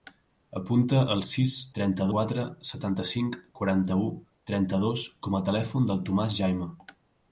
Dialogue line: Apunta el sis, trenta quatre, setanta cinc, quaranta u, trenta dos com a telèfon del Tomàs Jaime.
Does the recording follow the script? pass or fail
pass